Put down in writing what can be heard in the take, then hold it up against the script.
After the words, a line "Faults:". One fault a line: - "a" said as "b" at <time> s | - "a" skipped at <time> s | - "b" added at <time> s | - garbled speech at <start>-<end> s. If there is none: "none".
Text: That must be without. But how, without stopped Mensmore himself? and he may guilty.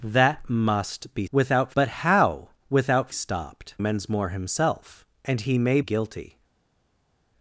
That must be without. But how, without stopped Mensmore himself? and he may guilty.
Faults:
none